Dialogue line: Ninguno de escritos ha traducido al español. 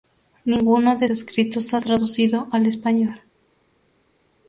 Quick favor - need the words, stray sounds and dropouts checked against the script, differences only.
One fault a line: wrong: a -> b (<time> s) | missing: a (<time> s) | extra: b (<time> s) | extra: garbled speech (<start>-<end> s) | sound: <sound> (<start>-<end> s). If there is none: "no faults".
no faults